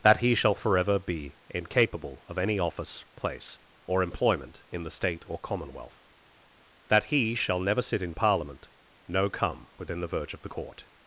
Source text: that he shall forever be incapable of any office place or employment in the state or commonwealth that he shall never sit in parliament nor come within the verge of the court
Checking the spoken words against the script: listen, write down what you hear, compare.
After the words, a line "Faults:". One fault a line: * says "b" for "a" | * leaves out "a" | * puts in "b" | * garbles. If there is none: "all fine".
that he shall forever be incapable of any office place or employment in the state or commonwealth that he shall never sit in parliament no come within the verge of the court
Faults:
* says "no" for "nor"